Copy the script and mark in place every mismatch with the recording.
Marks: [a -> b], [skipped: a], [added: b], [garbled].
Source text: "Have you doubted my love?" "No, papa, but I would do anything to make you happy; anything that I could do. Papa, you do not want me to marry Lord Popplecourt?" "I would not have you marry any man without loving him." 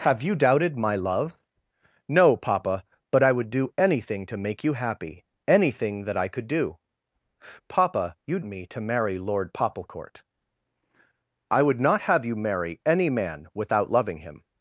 "Have you doubted my love?" "No, papa, but I would do anything to make you happy; anything that I could do. Papa, you [skipped: do not want] me to marry Lord Popplecourt?" "I would not have you marry any man without loving him."